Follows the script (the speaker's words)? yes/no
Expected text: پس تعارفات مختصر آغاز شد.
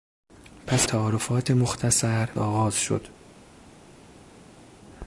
yes